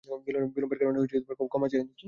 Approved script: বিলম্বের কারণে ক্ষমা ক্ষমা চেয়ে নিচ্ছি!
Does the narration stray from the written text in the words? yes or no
yes